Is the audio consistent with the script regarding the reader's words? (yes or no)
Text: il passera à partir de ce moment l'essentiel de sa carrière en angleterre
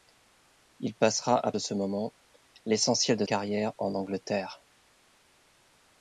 no